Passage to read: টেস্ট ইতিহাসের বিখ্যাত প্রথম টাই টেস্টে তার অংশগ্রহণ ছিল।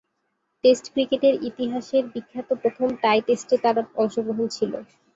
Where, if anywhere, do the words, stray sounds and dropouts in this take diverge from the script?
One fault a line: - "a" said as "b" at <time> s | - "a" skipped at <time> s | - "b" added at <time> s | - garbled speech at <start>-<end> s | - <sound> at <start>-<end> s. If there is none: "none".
- "ক্রিকেটের" added at 0.9 s